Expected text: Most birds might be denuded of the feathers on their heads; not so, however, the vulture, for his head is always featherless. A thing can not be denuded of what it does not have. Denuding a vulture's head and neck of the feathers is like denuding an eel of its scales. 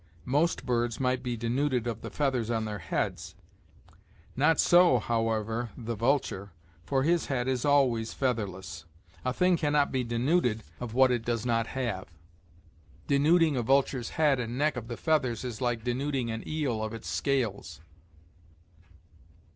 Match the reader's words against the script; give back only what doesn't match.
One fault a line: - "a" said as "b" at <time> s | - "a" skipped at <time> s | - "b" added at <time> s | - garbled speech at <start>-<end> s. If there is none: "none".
none